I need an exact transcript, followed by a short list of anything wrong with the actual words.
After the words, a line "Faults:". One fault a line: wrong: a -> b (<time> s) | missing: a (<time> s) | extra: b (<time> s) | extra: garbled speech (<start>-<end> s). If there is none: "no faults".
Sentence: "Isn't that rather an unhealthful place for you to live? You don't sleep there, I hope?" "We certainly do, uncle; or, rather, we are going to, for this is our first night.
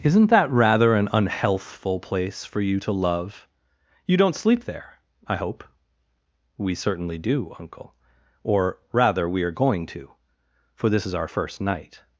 "Isn't that rather an unhealthful place for you to love? You don't sleep there, I hope?" "We certainly do, uncle; or, rather, we are going to, for this is our first night.
Faults:
wrong: live -> love (2.9 s)